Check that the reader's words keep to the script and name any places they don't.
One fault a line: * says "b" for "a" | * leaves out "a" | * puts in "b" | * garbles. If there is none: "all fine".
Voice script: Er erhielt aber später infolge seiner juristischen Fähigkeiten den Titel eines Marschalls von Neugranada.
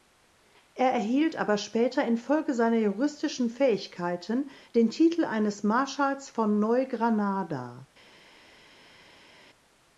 all fine